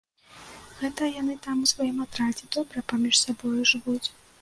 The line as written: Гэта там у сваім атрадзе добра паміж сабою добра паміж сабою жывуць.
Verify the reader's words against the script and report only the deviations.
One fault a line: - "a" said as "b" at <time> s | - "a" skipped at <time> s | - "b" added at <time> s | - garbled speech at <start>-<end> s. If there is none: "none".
- "яны" added at 1.2 s
- "добра паміж сабою" skipped at 3.6 s